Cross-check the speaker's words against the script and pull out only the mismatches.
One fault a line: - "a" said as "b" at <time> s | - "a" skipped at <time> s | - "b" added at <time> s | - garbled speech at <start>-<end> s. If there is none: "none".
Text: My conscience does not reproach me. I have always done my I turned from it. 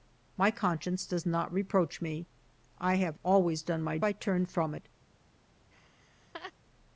none